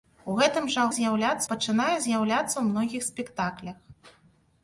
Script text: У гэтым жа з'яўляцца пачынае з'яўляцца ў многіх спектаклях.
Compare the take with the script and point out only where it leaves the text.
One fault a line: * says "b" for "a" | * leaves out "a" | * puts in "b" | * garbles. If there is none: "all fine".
all fine